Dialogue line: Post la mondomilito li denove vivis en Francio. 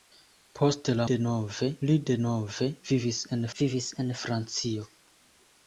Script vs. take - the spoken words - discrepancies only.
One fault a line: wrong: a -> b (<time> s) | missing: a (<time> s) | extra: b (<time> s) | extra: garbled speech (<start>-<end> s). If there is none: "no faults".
wrong: mondomilito -> denove (1.1 s)
extra: vivis en (3.6 s)